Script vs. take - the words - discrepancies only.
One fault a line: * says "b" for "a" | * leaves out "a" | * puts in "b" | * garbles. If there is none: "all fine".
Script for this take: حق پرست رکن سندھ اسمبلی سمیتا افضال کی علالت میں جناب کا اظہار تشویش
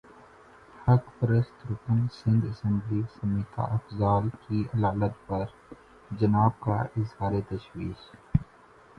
* says "پر" for "میں"